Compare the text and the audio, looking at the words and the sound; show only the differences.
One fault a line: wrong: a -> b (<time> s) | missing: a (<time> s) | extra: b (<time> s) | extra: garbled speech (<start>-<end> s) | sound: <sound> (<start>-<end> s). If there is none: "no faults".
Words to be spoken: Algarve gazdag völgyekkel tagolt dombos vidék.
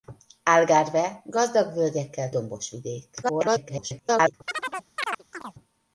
missing: tagolt (2.3 s)
extra: garbled speech (3.2-4.3 s)
sound: chirp (4.5-5.6 s)